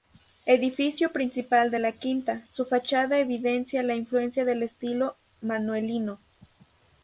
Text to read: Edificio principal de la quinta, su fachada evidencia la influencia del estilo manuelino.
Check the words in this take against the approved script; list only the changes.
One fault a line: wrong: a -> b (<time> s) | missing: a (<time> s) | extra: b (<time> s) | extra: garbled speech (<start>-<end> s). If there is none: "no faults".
no faults